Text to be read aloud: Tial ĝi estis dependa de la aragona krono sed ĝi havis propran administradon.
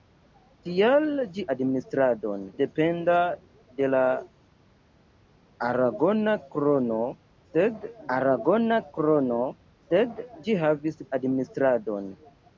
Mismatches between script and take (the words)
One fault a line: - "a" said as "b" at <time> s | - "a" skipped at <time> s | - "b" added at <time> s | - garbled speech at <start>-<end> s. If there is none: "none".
- "estis" said as "administradon" at 1.6 s
- "aragona krono sed" added at 8.2 s
- "propran" skipped at 11.0 s